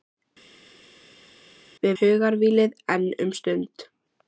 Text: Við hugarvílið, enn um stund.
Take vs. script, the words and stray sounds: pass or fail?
pass